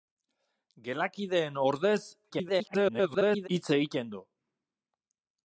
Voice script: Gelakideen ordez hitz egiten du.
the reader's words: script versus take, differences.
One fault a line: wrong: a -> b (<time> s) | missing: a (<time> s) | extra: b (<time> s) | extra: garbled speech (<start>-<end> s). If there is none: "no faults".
extra: garbled speech (2.3-3.5 s)